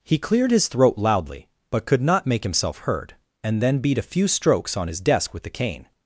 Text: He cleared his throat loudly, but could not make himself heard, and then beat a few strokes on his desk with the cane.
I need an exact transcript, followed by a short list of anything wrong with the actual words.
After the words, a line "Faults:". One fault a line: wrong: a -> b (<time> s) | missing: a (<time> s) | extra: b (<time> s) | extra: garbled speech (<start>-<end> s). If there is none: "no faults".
He cleared his throat loudly, but could not make himself heard, and then beat a few strokes on his desk with the cane.
Faults:
no faults